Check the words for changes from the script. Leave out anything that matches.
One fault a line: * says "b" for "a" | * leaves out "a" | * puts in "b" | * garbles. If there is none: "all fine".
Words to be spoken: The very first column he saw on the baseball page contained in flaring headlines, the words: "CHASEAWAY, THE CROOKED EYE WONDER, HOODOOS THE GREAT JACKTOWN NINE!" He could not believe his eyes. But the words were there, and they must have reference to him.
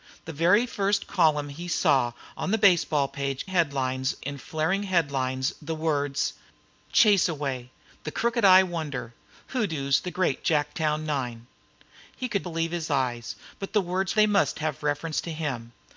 * says "headlines" for "contained"
* leaves out "not"
* leaves out "were there and"